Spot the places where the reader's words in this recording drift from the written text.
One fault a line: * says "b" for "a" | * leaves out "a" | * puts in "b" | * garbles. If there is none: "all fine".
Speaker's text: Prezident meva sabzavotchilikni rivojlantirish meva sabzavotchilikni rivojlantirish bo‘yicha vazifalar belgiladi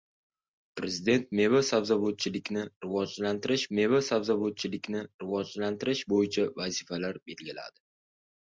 all fine